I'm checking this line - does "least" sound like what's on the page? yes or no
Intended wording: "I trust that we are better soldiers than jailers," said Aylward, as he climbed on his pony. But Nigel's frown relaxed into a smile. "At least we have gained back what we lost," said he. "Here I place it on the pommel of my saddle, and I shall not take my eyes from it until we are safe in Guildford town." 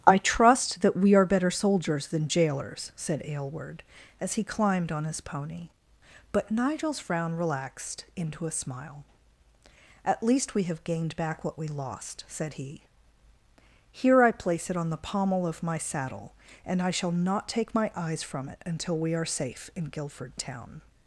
yes